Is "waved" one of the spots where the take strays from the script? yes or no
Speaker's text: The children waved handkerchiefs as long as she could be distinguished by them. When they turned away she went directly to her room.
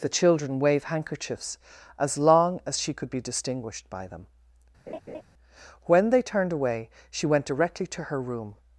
yes